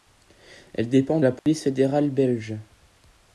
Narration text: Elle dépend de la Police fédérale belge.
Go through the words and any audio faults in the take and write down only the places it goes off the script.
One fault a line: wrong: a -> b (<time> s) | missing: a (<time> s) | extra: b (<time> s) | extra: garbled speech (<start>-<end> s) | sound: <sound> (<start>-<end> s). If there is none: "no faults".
missing: de (1.2 s)
sound: dropout (1.4-1.5 s)